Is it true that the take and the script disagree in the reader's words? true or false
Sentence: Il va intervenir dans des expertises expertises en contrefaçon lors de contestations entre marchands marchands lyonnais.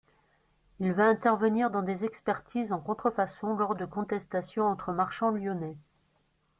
true